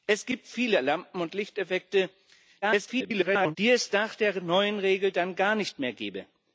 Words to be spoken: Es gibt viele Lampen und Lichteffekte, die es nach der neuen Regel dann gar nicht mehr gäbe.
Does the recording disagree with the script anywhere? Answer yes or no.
yes